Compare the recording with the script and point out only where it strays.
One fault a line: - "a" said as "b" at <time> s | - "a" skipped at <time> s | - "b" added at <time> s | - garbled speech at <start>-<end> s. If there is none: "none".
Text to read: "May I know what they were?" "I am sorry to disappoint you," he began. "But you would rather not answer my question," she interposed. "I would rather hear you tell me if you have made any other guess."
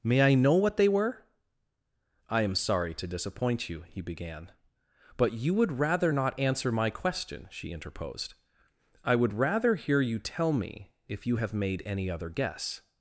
none